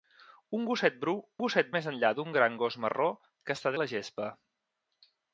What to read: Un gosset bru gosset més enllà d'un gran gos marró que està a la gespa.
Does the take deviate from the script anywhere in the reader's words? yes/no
no